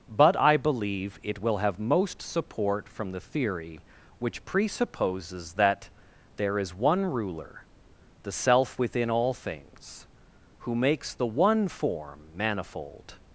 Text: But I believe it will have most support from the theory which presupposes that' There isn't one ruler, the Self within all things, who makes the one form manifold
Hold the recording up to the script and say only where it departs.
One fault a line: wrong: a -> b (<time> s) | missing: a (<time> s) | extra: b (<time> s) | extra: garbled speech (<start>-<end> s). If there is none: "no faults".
wrong: isn't -> is (6.6 s)